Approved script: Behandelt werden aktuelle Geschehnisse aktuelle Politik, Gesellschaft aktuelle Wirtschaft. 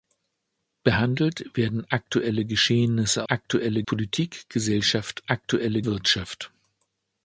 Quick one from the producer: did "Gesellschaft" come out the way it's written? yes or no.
yes